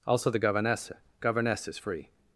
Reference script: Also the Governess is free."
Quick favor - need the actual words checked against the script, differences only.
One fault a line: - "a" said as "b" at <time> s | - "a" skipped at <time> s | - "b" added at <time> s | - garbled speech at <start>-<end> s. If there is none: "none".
- "Governess" added at 1.2 s